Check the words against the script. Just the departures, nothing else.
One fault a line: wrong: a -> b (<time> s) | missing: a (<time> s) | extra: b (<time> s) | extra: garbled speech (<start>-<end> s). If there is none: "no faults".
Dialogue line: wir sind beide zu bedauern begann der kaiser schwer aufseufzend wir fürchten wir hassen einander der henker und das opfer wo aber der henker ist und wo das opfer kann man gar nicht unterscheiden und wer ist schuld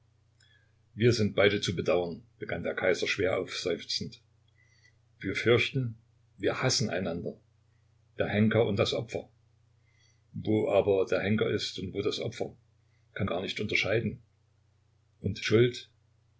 missing: man (13.3 s)
missing: wer ist (15.4 s)